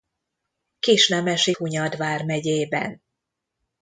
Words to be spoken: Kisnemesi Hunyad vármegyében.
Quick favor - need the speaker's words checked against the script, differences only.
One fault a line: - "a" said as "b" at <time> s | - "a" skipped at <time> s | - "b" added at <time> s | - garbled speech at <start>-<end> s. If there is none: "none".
none